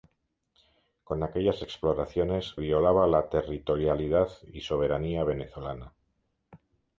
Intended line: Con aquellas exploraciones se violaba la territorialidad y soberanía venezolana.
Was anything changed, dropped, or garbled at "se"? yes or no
yes